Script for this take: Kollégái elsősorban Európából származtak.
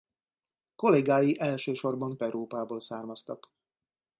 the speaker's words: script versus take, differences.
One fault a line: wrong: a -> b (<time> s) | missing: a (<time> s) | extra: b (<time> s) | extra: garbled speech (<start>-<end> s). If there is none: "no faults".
no faults